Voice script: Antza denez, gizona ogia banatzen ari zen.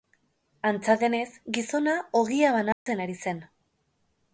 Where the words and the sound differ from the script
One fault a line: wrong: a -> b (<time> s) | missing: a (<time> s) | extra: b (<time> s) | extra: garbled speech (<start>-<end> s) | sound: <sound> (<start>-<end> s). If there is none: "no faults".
sound: dropout (2.7-2.9 s)